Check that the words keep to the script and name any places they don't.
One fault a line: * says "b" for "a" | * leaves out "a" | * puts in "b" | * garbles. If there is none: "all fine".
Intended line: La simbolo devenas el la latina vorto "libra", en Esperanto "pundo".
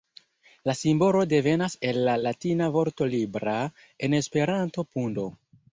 all fine